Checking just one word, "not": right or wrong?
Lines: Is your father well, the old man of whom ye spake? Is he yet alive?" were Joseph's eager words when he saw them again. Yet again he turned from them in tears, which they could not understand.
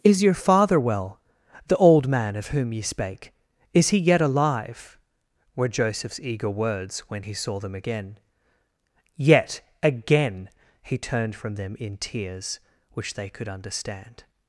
wrong